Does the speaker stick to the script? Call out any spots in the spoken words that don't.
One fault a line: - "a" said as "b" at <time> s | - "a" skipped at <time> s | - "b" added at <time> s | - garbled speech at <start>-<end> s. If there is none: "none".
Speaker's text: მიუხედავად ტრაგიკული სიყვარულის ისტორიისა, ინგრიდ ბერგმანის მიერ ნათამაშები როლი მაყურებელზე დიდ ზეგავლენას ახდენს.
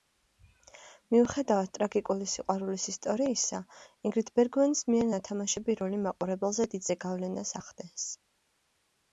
none